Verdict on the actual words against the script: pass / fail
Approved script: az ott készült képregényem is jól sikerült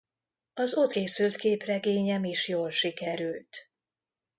pass